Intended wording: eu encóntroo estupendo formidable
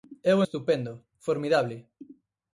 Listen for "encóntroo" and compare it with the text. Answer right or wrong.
wrong